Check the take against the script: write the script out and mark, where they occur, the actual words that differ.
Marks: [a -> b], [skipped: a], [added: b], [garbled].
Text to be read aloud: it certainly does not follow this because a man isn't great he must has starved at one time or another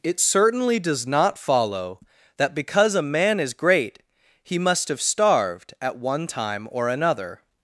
it certainly does not follow [this -> that] because a man [isn't -> is] great he must [has -> have] starved at one time or another